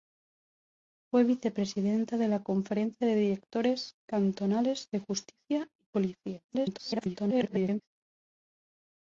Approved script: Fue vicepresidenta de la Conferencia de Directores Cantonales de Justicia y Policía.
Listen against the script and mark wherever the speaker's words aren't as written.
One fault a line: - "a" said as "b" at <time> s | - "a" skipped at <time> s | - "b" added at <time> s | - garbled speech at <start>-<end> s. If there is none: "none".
- garbled speech at 6.5-7.9 s